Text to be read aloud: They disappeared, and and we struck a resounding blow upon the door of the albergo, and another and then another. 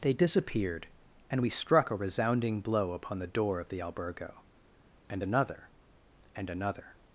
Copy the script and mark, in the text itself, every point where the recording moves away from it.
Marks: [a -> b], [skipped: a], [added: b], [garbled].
They disappeared, and [skipped: and] we struck a resounding blow upon the door of the albergo, and another and [skipped: then] another.